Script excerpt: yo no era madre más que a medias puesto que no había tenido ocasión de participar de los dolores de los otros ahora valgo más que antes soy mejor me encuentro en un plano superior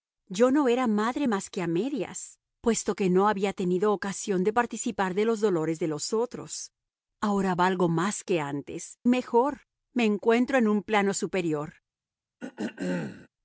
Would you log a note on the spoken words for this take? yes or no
yes